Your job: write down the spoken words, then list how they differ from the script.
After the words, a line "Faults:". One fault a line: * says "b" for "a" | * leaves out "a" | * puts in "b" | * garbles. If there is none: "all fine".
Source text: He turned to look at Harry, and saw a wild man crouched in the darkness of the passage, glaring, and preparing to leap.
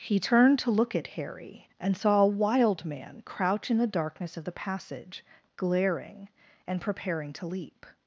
He turned to look at Harry, and saw a wild man crouch in the darkness of the passage, glaring, and preparing to leap.
Faults:
* says "crouch" for "crouched"